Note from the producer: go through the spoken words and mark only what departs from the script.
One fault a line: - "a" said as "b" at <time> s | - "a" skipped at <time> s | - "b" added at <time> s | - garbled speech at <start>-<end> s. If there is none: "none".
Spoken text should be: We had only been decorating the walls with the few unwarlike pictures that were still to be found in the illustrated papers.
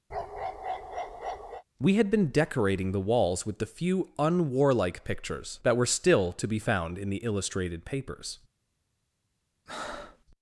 - "only" skipped at 2.1 s